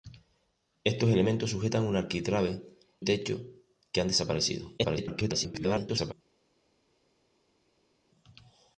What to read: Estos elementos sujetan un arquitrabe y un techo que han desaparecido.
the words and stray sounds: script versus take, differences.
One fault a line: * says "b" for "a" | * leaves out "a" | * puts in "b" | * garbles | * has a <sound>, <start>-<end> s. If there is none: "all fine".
* leaves out "y un"
* garbles